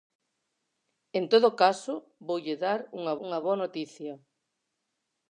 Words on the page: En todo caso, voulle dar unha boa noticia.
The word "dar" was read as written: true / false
true